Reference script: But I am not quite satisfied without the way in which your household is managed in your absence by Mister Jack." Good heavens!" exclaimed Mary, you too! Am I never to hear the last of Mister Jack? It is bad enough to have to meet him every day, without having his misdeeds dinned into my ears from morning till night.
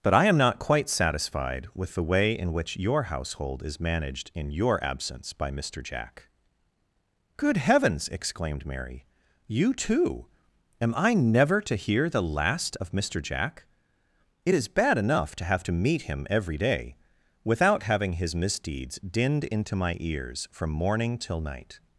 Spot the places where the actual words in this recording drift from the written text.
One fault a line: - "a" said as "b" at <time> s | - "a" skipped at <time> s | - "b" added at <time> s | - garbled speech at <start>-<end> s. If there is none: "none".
- "without" said as "with" at 1.8 s